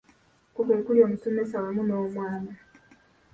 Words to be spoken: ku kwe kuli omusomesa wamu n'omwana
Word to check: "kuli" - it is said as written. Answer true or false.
true